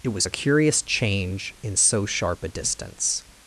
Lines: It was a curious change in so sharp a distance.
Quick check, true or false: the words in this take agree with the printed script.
true